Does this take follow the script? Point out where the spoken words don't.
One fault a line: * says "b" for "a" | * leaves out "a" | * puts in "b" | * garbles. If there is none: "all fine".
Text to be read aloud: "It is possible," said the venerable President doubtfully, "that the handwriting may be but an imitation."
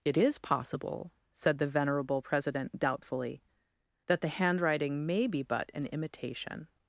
all fine